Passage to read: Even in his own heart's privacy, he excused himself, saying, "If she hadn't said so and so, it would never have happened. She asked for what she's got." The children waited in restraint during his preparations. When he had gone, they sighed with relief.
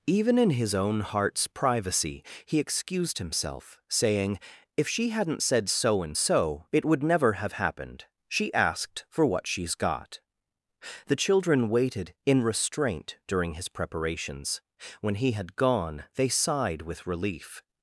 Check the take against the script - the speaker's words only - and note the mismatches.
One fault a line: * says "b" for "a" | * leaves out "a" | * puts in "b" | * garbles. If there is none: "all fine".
all fine